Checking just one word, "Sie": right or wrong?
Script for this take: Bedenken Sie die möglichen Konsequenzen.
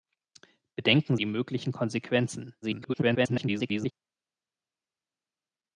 wrong